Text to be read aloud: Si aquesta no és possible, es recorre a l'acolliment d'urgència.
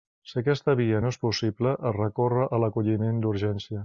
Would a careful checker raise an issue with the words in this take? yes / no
yes